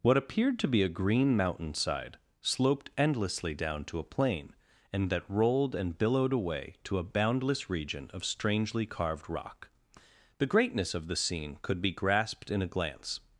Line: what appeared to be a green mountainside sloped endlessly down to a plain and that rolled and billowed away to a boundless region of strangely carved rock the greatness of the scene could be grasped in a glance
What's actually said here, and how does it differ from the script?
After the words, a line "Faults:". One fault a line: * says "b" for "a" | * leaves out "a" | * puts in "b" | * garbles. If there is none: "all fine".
what appeared to be a green mountainside sloped endlessly down to a plain and that rolled and billowed away to a boundless region of strangely carved rock the greatness of the scene could be grasped in a glance
Faults:
all fine